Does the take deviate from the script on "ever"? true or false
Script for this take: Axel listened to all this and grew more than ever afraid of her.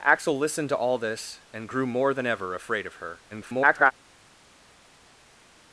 false